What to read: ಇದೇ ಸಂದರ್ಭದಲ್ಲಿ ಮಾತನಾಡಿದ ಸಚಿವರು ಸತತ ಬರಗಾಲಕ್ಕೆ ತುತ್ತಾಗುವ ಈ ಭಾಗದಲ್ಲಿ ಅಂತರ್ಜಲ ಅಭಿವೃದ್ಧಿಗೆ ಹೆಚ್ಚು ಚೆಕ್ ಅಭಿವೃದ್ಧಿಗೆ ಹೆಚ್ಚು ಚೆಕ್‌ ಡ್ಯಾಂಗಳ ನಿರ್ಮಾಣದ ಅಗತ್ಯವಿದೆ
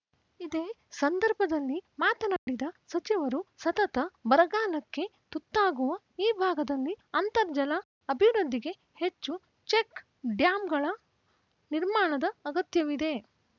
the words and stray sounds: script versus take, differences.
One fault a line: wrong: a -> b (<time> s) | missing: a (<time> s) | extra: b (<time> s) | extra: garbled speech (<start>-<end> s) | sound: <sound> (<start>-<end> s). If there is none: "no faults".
sound: dropout (2.4-2.5 s)
missing: ಅಭಿವೃದ್ಧಿಗೆ ಹೆಚ್ಚು ಚೆಕ್ (10.0 s)